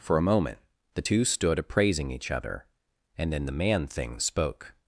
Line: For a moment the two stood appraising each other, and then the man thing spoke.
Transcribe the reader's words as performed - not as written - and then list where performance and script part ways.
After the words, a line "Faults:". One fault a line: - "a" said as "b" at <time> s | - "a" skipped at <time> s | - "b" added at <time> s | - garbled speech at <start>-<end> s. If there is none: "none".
For a moment the two stood appraising each other, and then the man thing spoke.
Faults:
none